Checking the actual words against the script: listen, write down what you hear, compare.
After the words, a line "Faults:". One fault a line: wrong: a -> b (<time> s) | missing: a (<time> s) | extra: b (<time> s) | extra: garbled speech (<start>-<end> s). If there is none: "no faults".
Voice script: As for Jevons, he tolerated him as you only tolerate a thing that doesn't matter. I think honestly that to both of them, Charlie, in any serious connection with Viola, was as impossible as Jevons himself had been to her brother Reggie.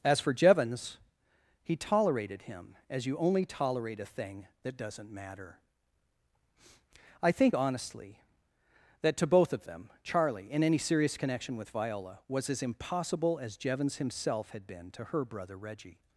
As for Jevons, he tolerated him as you only tolerate a thing that doesn't matter. I think honestly that to both of them, Charlie, in any serious connection with Viola, was as impossible as Jevons himself had been to her brother Reggie.
Faults:
no faults